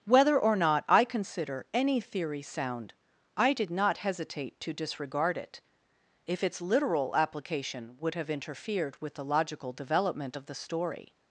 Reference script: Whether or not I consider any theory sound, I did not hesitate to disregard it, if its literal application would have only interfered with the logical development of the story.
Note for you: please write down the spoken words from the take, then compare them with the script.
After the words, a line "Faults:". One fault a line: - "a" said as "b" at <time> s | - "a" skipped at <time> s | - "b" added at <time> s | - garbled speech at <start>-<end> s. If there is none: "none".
Whether or not I consider any theory sound, I did not hesitate to disregard it, if its literal application would have interfered with the logical development of the story.
Faults:
- "only" skipped at 8.3 s